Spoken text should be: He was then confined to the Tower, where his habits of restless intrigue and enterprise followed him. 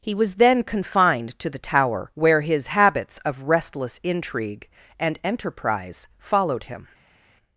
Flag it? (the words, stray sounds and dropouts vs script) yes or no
no